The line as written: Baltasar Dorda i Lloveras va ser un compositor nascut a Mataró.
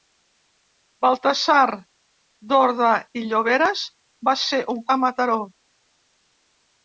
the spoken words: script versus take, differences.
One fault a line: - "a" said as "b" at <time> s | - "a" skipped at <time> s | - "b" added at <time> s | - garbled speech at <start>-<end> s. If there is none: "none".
- "compositor nascut" skipped at 4.8 s